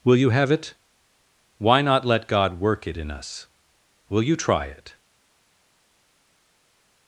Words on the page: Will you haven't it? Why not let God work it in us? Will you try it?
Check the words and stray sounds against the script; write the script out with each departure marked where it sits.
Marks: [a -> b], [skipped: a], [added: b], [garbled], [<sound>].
Will you [haven't -> have] it? Why not let God work it in us? Will you try it?